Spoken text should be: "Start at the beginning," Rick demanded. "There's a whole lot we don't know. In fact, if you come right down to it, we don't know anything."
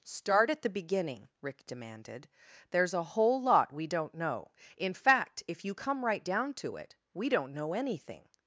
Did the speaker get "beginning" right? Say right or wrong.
right